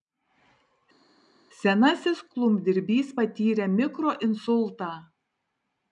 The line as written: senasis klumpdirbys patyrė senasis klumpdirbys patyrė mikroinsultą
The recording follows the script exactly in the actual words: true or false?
false